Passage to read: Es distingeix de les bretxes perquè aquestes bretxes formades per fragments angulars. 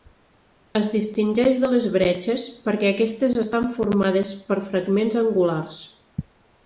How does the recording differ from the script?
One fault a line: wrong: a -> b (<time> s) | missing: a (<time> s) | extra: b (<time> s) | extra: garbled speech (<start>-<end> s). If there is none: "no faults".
wrong: bretxes -> estan (3.4 s)